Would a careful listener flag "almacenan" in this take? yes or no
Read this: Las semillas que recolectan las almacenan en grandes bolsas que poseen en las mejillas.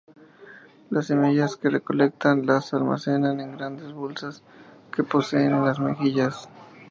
no